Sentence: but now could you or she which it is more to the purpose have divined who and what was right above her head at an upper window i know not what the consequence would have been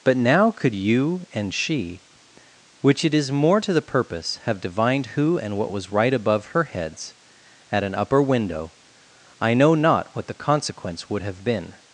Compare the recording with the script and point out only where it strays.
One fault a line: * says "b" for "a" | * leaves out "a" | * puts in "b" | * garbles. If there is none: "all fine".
* says "and" for "or"
* says "heads" for "head"